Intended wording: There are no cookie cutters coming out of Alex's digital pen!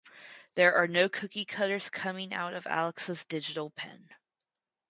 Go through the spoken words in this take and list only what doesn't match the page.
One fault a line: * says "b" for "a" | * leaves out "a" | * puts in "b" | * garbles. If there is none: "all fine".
all fine